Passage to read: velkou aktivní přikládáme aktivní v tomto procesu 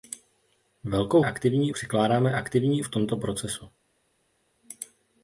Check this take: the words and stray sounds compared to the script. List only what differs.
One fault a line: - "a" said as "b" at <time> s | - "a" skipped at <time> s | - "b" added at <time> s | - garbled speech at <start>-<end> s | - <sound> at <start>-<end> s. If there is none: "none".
none